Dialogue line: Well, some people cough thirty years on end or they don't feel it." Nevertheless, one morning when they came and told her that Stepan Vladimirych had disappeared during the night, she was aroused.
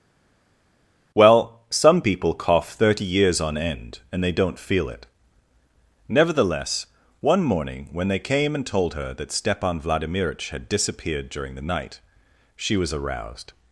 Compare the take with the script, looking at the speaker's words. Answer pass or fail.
fail